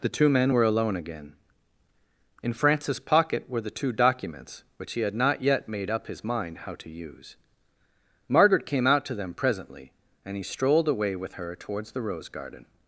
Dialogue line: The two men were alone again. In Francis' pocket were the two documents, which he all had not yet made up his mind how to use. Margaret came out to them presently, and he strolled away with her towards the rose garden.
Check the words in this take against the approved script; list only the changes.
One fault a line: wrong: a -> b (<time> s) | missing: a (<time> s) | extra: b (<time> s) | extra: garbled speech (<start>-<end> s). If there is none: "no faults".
missing: all (5.0 s)